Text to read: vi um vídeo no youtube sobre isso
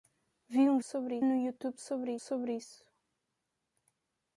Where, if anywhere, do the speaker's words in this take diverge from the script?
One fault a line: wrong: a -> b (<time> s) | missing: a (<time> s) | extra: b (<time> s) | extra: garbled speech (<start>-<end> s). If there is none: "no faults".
wrong: vídeo -> sobre (0.8 s)
extra: sobre (2.2 s)